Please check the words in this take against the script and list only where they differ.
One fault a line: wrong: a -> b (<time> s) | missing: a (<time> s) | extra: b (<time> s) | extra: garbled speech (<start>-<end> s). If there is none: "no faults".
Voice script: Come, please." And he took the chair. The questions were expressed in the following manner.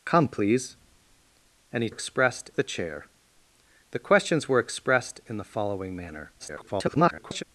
wrong: took -> expressed (1.9 s)
extra: garbled speech (6.4-7.4 s)